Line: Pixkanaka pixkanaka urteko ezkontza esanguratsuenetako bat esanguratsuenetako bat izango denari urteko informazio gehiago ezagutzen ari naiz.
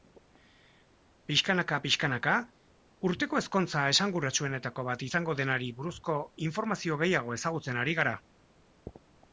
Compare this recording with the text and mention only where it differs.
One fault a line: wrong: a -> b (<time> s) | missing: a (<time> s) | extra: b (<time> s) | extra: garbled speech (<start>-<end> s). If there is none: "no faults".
missing: esanguratsuenetako bat (5.1 s)
wrong: urteko -> buruzko (5.8 s)
wrong: naiz -> gara (8.0 s)